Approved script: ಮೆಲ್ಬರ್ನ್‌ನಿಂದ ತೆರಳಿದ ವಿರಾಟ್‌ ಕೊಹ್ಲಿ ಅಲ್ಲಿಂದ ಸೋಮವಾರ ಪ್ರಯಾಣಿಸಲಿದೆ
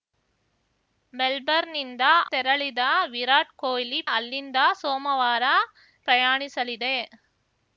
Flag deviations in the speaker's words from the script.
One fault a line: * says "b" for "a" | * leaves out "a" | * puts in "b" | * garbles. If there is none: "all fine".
all fine